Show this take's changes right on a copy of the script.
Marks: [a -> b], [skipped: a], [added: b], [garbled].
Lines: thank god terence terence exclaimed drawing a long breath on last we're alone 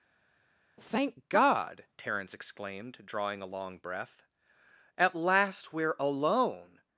thank god terence [skipped: terence] exclaimed drawing a long breath [on -> at] last we're alone